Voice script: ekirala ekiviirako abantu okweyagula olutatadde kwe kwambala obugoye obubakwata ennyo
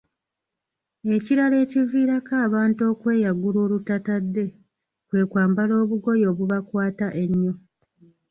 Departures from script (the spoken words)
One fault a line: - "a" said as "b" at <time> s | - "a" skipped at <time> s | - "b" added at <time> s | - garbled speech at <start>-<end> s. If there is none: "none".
none